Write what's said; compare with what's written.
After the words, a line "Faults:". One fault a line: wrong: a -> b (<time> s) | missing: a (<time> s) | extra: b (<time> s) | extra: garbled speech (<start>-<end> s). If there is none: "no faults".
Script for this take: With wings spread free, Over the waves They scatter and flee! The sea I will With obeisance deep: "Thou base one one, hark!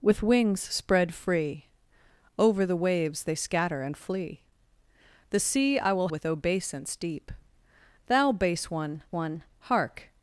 With wings spread free, Over the waves They scatter and flee! The sea I will With obeisance deep: "Thou base one one, hark!
Faults:
no faults